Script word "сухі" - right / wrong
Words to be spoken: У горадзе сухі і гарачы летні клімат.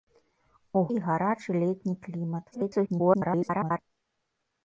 wrong